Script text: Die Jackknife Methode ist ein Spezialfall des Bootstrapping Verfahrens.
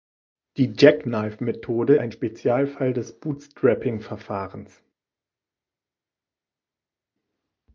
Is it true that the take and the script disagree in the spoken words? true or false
true